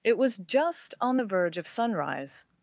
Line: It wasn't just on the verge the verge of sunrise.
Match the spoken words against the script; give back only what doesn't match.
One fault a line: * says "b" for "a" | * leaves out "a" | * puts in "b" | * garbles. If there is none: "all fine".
* says "was" for "wasn't"
* leaves out "the verge"